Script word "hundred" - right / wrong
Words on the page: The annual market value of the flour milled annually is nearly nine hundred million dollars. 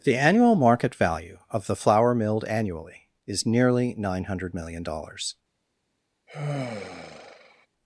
right